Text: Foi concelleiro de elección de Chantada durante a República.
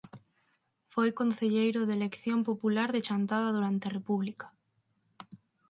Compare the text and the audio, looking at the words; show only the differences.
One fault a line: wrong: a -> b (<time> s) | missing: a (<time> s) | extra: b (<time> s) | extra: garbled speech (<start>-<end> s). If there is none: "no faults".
extra: popular (2.5 s)